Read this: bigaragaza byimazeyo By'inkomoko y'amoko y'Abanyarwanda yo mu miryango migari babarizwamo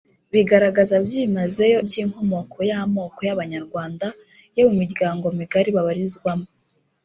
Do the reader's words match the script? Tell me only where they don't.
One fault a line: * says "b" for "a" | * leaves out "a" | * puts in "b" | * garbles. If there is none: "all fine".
all fine